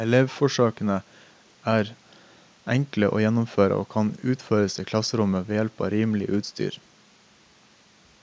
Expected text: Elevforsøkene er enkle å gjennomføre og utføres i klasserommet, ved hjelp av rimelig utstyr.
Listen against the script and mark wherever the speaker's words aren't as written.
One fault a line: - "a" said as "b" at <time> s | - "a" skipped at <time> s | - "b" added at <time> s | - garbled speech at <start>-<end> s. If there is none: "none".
- "kan" added at 3.9 s